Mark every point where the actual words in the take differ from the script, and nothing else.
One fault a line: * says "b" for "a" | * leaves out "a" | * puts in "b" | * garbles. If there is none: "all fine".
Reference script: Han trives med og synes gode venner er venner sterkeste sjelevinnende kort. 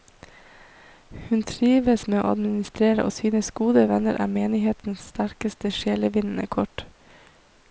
* says "Hun" for "Han"
* puts in "å administrere"
* says "menighetens" for "venner"